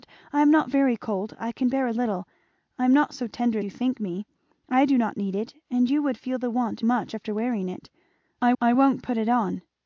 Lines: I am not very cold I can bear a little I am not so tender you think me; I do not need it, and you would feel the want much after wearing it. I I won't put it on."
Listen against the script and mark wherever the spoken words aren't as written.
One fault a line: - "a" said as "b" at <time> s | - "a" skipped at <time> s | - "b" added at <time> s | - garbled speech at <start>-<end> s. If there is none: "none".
none